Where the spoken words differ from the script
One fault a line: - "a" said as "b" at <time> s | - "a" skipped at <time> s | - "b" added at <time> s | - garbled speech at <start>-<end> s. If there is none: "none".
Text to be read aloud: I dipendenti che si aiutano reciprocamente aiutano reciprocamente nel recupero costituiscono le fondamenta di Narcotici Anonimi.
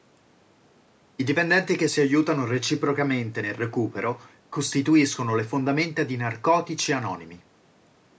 - "aiutano reciprocamente" skipped at 3.4 s